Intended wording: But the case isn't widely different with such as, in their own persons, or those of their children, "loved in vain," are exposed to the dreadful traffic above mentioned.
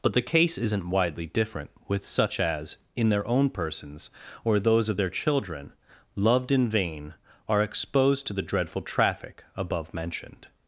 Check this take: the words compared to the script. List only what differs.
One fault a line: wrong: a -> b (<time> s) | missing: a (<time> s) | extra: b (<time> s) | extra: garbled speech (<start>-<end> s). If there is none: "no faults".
no faults